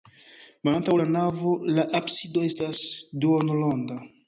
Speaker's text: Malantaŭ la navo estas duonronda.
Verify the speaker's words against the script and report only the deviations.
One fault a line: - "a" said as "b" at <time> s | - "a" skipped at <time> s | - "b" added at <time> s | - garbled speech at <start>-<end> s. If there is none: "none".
- "la absido" added at 1.7 s